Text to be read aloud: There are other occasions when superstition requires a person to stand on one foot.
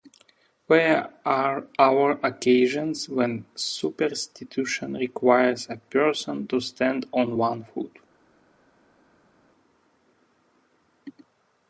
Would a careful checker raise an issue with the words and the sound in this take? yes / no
no